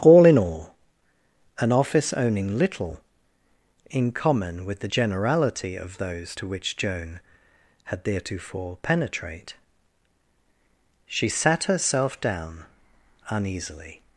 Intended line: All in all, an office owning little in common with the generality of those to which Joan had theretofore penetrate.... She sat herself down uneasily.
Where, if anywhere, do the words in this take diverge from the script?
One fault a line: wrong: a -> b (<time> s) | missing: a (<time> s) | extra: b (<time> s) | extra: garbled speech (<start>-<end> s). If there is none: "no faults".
no faults